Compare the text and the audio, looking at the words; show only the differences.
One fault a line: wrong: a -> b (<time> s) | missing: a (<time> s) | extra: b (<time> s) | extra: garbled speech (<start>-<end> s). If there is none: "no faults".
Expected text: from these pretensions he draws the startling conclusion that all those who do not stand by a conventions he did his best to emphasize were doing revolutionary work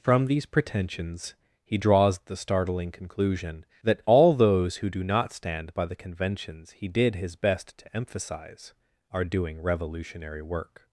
wrong: a -> the (5.8 s)
wrong: were -> are (9.1 s)